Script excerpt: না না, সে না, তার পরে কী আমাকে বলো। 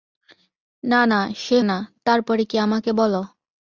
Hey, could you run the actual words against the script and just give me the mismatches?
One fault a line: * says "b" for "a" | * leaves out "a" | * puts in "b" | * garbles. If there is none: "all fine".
all fine